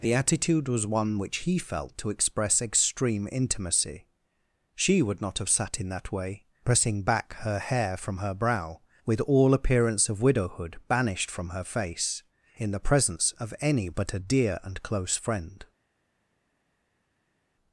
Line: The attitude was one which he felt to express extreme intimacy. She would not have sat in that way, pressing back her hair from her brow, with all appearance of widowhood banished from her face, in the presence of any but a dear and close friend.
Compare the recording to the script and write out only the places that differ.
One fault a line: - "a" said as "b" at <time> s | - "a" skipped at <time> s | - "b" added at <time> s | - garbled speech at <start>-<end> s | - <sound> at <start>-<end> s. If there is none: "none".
none